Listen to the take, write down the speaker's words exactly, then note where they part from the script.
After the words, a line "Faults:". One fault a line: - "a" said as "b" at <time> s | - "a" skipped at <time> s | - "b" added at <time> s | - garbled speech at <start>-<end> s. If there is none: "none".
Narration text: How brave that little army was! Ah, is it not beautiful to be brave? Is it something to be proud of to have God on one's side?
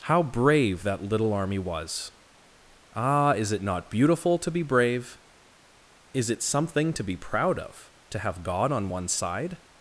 How brave that little army was! Ah, is it not beautiful to be brave? Is it something to be proud of to have God on one's side?
Faults:
none